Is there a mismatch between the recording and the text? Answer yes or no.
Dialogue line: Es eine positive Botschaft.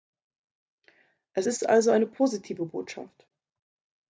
yes